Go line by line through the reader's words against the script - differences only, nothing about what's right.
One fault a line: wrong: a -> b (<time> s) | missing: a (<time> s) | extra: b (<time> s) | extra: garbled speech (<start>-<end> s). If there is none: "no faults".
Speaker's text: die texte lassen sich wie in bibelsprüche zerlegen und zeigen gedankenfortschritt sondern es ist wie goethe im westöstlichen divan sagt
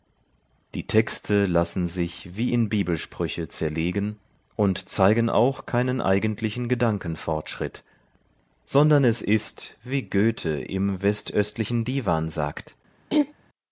extra: auch keinen eigentlichen (5.3 s)